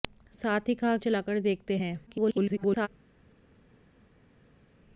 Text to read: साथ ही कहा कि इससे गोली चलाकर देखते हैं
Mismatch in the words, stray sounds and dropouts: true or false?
true